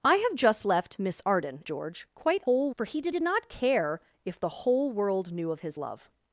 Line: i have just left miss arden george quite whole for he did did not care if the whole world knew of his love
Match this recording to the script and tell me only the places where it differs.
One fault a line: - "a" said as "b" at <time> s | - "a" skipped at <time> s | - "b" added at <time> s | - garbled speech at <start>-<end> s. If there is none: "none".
none